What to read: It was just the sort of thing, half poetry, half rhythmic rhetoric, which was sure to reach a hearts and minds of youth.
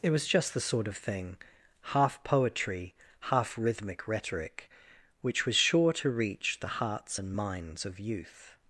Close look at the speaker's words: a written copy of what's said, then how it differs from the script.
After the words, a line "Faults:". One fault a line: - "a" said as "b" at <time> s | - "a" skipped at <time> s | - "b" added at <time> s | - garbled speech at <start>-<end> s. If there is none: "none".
It was just the sort of thing, half poetry, half rhythmic rhetoric, which was sure to reach the hearts and minds of youth.
Faults:
- "a" said as "the" at 6.6 s